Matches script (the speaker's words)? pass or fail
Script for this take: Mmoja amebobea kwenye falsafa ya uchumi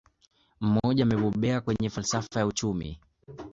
pass